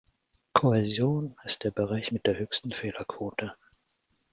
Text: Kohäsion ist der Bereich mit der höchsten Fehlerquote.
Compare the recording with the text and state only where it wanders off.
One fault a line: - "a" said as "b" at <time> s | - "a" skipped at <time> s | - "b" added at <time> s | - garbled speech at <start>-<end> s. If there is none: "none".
none